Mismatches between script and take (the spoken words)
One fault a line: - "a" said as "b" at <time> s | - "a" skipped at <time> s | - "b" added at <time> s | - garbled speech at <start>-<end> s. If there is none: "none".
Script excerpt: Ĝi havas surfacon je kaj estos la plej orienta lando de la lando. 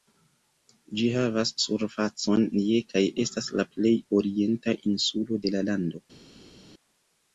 - "estos" said as "estas" at 3.2 s
- "lando" said as "insulo" at 4.9 s